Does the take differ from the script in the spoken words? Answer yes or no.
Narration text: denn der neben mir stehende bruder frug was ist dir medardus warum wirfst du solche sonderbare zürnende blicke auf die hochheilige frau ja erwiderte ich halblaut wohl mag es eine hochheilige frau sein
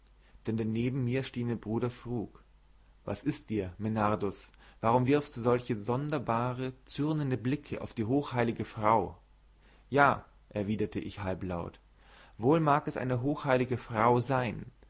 no